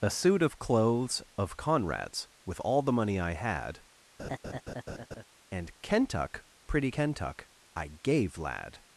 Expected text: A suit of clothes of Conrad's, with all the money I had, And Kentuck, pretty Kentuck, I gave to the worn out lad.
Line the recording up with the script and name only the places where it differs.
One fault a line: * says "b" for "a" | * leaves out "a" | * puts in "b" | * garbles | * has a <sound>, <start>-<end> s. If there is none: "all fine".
* has a laugh, 4.2-5.2 s
* leaves out "to the worn out"